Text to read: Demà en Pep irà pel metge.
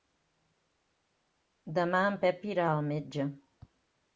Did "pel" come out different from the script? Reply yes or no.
yes